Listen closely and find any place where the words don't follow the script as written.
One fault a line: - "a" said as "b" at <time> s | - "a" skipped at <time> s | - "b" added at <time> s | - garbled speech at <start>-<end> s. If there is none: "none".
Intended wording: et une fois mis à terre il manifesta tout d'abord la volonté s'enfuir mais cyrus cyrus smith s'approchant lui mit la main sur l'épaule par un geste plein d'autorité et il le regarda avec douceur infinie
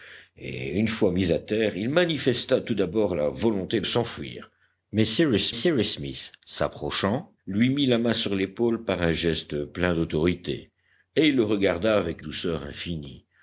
none